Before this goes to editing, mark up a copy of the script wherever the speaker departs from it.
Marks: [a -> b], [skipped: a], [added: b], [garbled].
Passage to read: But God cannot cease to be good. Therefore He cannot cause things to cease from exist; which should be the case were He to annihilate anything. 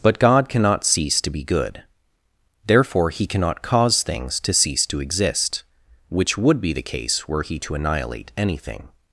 But God cannot cease to be good. Therefore He cannot cause things to cease [from -> to] exist; which [should -> would] be the case were He to annihilate anything.